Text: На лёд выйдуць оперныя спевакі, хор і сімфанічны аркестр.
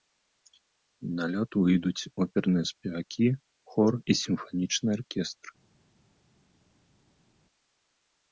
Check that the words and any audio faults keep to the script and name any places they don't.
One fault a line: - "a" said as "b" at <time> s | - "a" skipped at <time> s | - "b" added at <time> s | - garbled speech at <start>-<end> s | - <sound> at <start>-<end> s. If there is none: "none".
none